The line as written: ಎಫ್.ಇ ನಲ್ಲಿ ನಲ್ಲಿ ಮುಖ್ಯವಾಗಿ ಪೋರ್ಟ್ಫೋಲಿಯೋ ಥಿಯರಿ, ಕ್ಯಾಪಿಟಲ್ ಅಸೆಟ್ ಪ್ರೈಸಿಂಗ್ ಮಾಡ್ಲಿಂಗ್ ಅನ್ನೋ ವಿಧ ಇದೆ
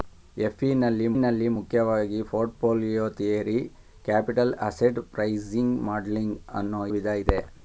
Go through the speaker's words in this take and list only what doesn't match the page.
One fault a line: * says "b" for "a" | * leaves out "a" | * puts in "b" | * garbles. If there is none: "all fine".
all fine